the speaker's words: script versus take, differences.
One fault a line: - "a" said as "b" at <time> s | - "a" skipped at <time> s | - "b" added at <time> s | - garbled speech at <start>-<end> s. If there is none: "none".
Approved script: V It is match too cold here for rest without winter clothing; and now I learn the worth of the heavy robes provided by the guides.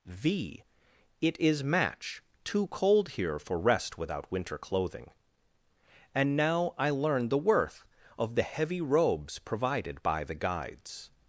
none